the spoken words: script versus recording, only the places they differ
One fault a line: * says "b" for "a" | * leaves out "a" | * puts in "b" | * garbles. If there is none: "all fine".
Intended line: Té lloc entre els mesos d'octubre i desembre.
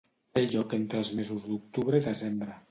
all fine